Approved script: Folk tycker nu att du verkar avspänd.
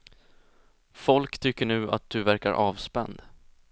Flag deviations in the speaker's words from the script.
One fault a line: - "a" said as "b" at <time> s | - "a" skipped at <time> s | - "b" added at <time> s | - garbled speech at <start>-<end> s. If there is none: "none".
none